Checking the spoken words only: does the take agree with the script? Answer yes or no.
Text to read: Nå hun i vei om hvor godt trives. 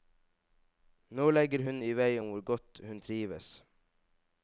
no